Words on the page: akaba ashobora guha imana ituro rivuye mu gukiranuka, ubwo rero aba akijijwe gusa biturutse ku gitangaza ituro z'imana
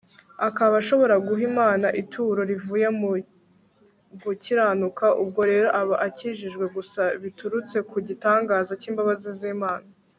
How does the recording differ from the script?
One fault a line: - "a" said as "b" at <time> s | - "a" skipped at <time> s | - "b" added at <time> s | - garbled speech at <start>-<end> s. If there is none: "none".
- "ituro" said as "cy'imbabazi" at 8.8 s